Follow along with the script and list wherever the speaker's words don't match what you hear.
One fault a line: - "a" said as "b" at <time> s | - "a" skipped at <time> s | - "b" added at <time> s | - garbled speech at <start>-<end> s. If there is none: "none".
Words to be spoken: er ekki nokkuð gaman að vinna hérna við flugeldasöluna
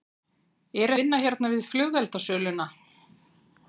- "ekki nokkuð gaman" skipped at 0.9 s